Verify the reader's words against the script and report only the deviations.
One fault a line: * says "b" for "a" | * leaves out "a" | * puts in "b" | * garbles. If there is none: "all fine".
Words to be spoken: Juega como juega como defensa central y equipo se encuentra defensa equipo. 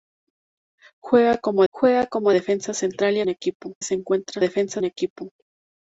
all fine